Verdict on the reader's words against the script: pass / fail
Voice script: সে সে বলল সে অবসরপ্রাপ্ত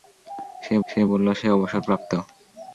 pass